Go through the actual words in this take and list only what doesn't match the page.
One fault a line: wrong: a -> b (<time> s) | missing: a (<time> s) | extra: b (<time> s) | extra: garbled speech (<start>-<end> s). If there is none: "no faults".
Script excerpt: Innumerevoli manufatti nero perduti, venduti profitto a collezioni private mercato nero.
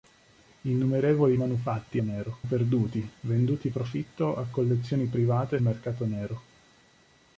no faults